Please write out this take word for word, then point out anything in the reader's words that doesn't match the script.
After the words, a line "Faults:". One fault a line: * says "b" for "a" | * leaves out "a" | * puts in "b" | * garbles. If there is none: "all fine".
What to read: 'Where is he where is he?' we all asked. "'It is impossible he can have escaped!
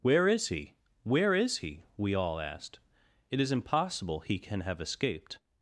'Where is he where is he?' we all asked. "'It is impossible he can have escaped!
Faults:
all fine